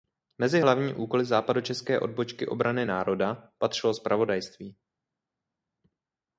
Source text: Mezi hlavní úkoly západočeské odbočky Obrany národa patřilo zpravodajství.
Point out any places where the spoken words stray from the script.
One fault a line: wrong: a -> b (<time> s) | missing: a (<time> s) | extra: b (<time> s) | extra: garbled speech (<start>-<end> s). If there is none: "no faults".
no faults